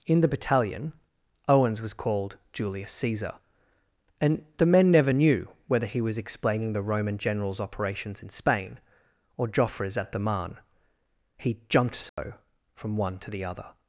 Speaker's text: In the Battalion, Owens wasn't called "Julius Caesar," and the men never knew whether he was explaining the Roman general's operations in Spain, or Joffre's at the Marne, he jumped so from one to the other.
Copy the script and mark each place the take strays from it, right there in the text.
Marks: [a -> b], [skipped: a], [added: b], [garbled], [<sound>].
In the Battalion, Owens [wasn't -> was] called "Julius Caesar," and the men never knew whether he was explaining the Roman general's operations in Spain, or Joffre's at the Marne, he jumped so [dropout] from one to the other.